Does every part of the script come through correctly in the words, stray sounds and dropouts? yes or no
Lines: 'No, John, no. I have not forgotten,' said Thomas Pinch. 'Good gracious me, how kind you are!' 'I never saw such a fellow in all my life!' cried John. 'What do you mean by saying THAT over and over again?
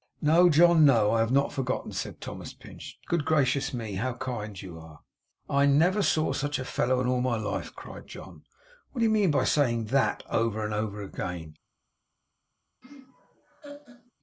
no